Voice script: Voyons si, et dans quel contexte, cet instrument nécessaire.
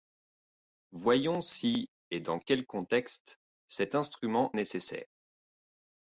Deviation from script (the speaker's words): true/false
false